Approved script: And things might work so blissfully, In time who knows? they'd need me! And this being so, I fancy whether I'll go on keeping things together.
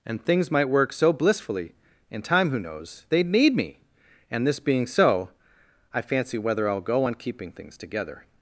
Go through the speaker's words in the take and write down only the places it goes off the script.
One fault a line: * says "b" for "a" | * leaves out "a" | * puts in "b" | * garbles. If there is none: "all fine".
all fine